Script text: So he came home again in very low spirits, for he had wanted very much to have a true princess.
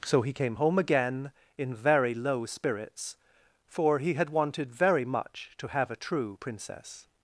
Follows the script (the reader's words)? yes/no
yes